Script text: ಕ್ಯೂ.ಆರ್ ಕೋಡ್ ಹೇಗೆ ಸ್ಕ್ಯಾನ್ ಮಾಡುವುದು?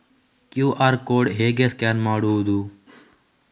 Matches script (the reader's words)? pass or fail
pass